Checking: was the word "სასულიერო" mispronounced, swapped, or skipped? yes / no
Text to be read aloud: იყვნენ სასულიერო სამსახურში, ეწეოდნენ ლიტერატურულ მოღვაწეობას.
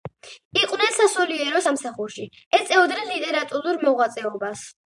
no